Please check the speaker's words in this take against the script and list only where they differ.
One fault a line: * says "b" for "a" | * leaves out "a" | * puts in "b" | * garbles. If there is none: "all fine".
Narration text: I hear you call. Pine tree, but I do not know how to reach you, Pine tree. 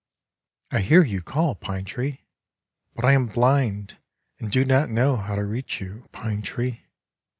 * puts in "am blind and"